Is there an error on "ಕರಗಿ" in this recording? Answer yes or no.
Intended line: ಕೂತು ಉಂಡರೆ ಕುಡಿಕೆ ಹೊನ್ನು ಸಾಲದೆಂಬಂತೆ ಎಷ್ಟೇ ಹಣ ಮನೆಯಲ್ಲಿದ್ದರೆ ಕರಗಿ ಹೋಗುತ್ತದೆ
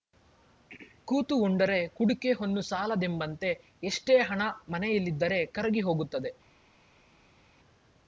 no